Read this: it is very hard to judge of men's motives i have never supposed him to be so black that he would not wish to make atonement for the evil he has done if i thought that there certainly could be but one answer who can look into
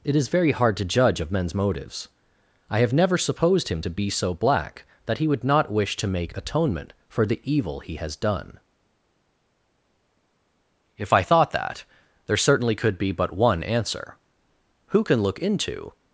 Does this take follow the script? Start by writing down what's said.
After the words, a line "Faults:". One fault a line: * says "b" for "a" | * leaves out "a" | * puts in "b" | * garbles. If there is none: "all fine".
it is very hard to judge of men's motives i have never supposed him to be so black that he would not wish to make atonement for the evil he has done if i thought that there certainly could be but one answer who can look into
Faults:
all fine